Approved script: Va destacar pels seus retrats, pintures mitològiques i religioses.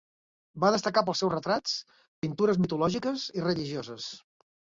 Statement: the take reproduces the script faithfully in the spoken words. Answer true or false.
true